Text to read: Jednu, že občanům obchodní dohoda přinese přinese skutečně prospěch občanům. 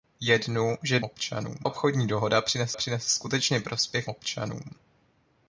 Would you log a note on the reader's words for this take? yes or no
no